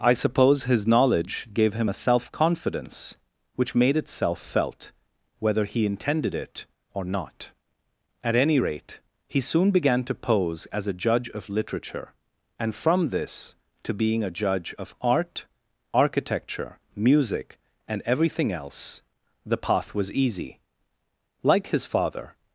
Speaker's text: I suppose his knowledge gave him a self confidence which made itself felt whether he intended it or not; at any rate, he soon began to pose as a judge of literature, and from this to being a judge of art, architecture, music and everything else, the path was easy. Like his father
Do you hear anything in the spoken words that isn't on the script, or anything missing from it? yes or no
no